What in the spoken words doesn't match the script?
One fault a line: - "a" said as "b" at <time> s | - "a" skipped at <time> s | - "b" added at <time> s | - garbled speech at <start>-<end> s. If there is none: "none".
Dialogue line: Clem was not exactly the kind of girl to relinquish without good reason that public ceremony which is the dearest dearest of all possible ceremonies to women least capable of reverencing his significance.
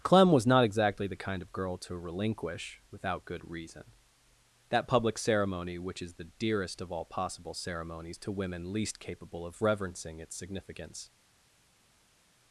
- "dearest" skipped at 6.8 s
- "his" said as "its" at 10.2 s